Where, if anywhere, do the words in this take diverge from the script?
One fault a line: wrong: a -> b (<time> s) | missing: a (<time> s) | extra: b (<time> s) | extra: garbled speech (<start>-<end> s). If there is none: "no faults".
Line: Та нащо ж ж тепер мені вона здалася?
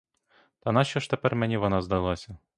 missing: ж (1.1 s)